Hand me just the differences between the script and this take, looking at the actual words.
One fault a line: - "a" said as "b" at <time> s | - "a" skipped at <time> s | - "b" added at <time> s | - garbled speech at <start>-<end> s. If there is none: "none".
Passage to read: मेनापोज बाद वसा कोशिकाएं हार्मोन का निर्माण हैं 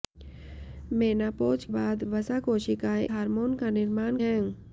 none